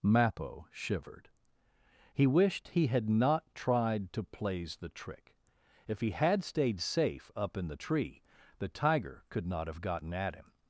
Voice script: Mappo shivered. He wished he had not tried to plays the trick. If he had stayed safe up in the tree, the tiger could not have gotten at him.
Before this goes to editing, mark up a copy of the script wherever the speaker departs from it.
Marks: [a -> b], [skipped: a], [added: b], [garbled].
Mappo shivered. He wished he had not tried to plays the trick. If he had stayed safe up in the tree, the tiger could not have gotten at him.